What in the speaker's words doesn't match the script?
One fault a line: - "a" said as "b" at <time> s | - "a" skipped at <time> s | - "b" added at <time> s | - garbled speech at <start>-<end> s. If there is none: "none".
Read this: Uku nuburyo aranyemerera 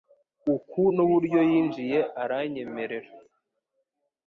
- "yinjiye" added at 1.5 s